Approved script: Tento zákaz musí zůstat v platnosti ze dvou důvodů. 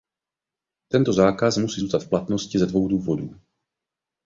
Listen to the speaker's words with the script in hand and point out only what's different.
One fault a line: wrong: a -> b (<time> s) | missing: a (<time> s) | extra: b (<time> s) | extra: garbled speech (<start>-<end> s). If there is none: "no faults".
no faults